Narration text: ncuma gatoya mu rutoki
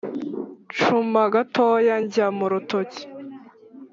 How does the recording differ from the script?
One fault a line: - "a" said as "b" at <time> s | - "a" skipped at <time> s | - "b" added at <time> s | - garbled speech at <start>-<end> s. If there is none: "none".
- "njya" added at 2.0 s